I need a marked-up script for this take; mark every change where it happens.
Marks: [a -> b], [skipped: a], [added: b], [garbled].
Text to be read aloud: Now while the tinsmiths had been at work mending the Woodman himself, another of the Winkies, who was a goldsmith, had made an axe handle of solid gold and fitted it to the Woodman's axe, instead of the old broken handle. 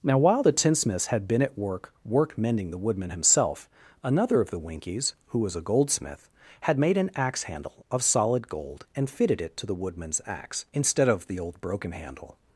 Now while the tinsmiths had been at work [added: work] mending the Woodman himself, another of the Winkies, who was a goldsmith, had made an axe handle of solid gold and fitted it to the Woodman's axe, instead of the old broken handle.